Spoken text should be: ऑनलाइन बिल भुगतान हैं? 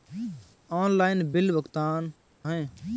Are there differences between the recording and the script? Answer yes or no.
no